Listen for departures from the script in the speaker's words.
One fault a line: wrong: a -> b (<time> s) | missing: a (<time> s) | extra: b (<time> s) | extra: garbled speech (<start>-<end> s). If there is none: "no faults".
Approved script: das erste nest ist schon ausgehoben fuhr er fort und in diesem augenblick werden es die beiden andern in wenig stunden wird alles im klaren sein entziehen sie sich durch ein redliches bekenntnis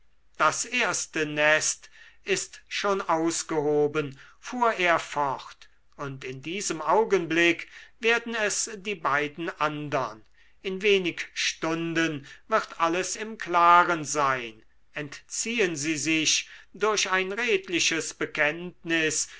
no faults